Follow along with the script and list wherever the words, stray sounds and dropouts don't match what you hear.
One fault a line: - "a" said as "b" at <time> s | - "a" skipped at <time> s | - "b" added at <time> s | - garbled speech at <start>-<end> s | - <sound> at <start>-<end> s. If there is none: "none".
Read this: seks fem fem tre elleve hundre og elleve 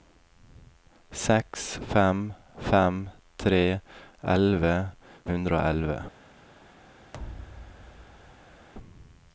- thud at 7.1-8.7 s